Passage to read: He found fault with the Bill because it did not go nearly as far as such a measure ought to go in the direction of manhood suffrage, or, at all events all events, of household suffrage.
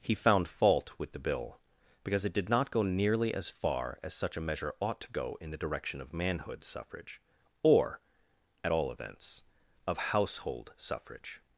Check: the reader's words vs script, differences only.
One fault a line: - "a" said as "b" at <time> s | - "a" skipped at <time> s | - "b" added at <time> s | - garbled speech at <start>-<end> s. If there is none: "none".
- "all events" skipped at 9.4 s